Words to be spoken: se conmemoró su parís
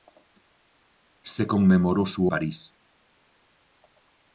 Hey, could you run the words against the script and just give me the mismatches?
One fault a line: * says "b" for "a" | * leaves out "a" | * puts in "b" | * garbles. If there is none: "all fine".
all fine